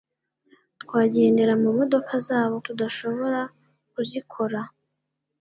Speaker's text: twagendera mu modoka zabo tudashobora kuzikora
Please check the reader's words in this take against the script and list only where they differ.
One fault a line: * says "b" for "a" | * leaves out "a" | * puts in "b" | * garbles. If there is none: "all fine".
all fine